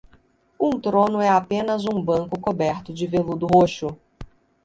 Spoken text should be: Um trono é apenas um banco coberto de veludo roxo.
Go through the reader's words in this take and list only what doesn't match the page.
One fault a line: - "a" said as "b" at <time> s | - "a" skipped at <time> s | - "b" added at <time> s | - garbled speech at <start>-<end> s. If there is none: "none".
none